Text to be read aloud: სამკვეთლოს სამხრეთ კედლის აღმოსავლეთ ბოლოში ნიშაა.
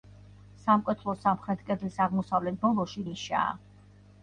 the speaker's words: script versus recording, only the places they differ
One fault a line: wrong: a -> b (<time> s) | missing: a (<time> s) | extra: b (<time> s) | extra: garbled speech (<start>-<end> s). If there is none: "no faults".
no faults